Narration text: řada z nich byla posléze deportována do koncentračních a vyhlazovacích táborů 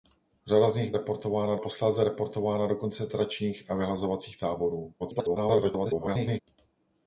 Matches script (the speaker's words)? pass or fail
fail